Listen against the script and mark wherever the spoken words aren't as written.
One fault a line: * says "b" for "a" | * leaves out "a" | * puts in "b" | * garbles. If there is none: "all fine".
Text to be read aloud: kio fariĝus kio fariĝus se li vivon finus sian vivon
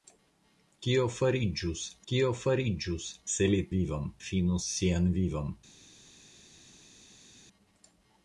all fine